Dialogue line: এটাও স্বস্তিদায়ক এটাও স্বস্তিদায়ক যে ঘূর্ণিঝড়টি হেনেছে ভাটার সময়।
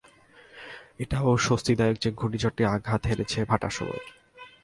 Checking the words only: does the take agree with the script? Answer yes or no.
no